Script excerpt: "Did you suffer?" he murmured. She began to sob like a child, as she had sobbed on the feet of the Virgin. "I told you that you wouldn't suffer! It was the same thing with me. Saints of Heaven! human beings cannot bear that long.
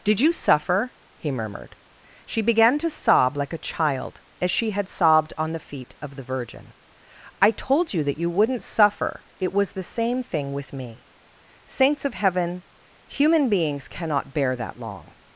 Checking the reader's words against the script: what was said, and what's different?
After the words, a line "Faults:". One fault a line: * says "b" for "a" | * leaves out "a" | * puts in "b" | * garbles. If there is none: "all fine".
"Did you suffer?" he murmured. She began to sob like a child, as she had sobbed on the feet of the Virgin. "I told you that you wouldn't suffer! It was the same thing with me. Saints of Heaven! human beings cannot bear that long.
Faults:
all fine